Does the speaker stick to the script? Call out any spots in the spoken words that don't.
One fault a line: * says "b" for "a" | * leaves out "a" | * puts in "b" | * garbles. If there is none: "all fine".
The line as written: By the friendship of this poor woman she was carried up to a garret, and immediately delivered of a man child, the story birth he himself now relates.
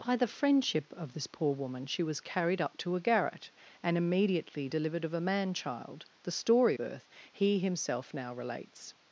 all fine